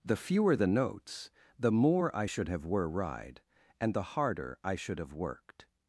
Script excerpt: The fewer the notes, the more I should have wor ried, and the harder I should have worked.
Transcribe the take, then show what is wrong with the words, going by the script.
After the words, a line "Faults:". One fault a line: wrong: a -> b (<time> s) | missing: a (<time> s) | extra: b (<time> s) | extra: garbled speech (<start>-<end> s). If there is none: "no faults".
The fewer the notes, the more I should have were ride, and the harder I should have worked.
Faults:
wrong: wor ried -> were ride (2.7 s)